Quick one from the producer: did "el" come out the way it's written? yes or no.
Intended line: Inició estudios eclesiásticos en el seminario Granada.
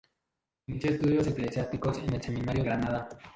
yes